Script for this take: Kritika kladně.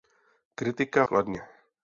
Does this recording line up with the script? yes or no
yes